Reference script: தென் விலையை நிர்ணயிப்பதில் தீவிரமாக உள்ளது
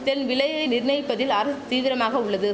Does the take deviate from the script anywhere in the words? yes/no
yes